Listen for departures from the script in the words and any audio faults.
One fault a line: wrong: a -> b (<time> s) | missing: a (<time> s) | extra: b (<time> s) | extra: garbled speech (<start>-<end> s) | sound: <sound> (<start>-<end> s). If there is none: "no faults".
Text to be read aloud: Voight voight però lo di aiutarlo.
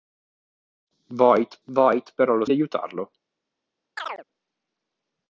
sound: chirp (4.0-4.3 s)